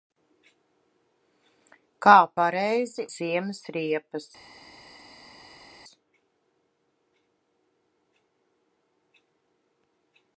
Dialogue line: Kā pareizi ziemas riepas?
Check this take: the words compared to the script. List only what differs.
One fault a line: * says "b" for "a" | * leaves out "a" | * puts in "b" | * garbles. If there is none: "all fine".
all fine